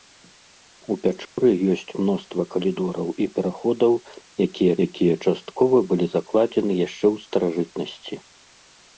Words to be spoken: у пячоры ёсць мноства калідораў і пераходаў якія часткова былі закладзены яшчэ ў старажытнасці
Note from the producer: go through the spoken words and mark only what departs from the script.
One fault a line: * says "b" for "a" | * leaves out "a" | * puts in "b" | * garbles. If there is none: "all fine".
* puts in "якія"